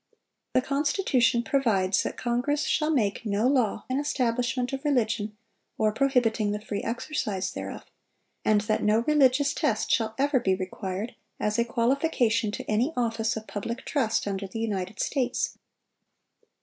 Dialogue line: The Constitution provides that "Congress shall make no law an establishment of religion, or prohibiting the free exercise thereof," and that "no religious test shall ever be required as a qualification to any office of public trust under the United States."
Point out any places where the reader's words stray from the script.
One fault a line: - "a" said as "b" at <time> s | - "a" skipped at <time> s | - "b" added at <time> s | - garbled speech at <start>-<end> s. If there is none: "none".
none